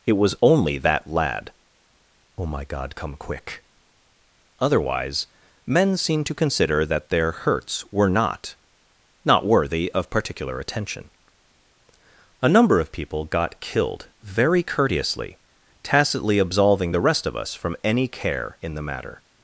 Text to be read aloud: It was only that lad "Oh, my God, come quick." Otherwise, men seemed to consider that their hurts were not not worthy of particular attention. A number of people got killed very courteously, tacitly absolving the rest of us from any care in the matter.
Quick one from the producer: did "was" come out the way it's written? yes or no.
yes